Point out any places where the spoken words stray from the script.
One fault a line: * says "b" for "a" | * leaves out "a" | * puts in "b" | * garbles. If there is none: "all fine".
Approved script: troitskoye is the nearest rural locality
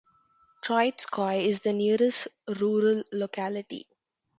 all fine